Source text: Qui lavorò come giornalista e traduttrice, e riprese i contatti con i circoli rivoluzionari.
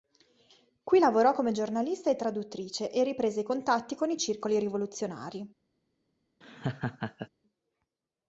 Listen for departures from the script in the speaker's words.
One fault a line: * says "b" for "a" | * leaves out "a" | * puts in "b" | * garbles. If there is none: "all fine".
all fine